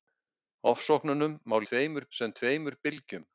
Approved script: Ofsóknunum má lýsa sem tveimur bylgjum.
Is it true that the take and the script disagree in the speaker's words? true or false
true